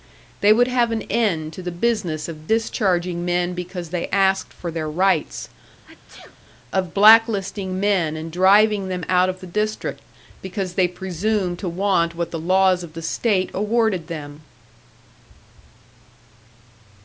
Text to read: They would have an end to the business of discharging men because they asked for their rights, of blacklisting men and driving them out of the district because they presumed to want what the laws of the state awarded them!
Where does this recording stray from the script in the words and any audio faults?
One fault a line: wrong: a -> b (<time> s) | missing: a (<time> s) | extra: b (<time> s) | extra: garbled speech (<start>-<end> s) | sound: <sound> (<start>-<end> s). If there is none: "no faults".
sound: sneeze (5.8-6.4 s)